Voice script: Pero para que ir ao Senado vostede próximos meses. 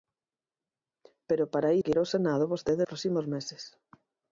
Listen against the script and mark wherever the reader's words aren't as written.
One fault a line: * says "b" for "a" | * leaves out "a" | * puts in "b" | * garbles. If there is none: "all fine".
all fine